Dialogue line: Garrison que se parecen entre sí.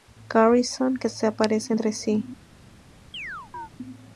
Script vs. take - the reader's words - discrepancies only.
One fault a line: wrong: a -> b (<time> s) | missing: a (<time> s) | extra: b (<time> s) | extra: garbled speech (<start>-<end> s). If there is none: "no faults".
no faults